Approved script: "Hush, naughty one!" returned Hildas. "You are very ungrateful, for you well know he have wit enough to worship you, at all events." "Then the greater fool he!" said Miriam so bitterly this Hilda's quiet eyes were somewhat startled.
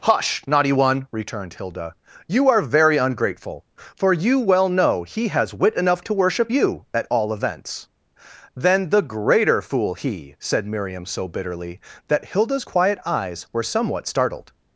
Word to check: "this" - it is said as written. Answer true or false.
false